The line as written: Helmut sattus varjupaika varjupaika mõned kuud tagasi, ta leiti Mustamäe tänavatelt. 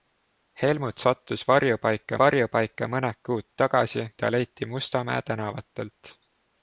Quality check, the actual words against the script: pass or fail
pass